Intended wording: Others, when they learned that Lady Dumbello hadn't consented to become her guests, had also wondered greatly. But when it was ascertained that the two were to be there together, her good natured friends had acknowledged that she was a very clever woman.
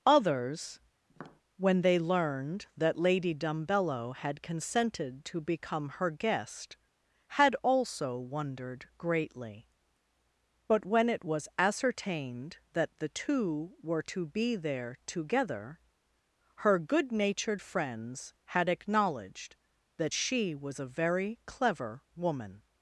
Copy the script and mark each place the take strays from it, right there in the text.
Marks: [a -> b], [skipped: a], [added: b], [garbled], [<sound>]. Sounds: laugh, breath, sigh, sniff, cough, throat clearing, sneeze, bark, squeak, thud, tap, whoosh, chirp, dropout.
Others, [tap] when they learned that Lady Dumbello [hadn't -> had] consented to become her [guests, -> guest] had also wondered greatly. But when it was ascertained that the two were to be there together, her good natured friends had acknowledged that she was a very clever woman.